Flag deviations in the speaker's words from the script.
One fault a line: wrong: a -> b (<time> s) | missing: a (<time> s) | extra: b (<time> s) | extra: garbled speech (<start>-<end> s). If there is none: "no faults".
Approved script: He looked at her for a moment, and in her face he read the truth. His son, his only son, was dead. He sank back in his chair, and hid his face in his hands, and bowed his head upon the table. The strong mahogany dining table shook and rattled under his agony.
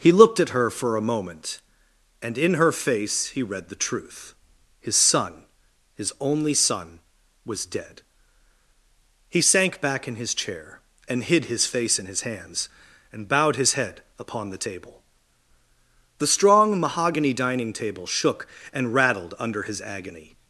no faults